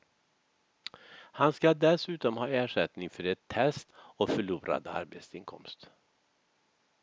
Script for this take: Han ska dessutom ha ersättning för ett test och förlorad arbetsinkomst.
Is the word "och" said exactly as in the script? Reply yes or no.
yes